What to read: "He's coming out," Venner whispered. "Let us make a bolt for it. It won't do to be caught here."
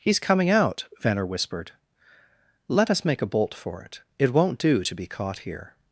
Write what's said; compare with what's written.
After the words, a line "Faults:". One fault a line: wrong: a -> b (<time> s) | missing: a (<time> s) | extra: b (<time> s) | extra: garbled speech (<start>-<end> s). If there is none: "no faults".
"He's coming out," Venner whispered. "Let us make a bolt for it. It won't do to be caught here."
Faults:
no faults